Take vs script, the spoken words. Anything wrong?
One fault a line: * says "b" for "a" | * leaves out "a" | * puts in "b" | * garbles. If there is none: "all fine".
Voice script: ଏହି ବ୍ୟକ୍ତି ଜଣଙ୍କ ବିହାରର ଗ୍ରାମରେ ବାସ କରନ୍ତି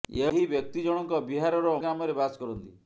all fine